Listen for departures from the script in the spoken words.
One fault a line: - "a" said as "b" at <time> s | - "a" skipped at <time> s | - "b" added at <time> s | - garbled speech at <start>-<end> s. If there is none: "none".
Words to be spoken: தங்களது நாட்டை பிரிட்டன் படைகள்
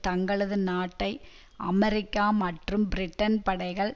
- "அமெரிக்கா மற்றும்" added at 1.6 s